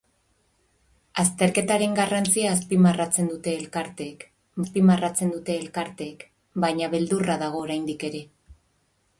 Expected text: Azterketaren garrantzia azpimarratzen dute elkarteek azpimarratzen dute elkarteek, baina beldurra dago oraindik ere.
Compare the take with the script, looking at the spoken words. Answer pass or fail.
pass